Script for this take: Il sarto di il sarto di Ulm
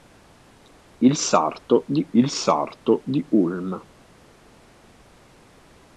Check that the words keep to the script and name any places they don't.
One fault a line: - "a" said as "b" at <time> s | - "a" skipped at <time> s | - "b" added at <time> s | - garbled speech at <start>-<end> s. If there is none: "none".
none